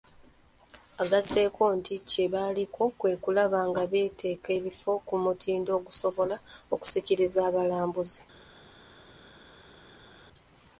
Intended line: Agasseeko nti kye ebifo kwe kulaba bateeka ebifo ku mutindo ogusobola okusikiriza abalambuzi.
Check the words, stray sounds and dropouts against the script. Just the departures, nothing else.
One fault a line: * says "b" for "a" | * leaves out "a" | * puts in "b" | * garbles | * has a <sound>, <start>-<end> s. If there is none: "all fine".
* says "baliko" for "ebifo"
* puts in "nga"